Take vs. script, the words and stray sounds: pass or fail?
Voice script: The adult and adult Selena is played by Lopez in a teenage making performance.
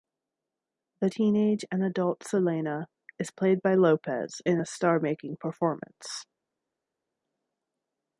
fail